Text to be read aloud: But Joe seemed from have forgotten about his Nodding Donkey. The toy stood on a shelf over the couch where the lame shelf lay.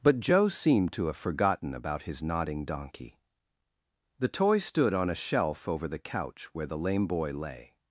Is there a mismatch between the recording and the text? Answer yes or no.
yes